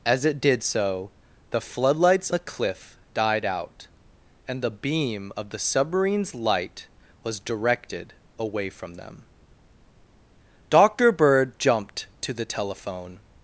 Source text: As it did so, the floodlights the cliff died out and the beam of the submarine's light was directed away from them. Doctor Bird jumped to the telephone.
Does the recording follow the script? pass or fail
pass